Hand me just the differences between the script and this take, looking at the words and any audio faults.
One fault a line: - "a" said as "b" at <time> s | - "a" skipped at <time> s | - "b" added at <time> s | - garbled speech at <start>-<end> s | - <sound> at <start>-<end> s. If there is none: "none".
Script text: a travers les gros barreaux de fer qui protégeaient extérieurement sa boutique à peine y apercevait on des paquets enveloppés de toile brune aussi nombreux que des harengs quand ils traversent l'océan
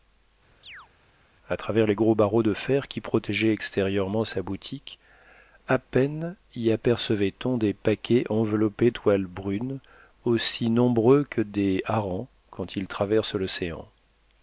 - chirp at 0.6-0.9 s
- "de" skipped at 8.9 s